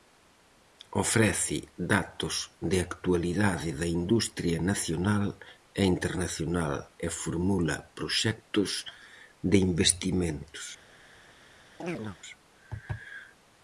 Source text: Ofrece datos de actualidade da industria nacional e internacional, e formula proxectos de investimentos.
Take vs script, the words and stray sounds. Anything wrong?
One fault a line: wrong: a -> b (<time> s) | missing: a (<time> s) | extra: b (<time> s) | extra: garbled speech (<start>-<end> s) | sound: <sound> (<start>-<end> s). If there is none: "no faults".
sound: chirp (11.8-12.2 s)